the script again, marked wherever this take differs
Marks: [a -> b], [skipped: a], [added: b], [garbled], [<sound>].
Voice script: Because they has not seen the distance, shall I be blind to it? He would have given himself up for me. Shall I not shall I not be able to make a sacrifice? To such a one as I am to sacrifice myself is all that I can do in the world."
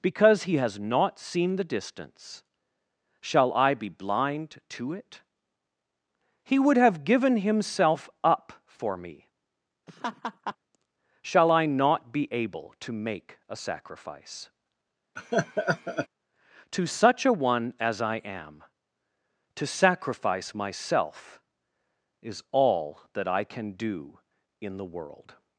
Because [they -> he] has not seen the distance, shall I be blind to it? He would have given himself up for me. [laugh] Shall I not [skipped: shall I not] be able to make a sacrifice? [laugh] To such a one as I am to sacrifice myself is all that I can do in the world."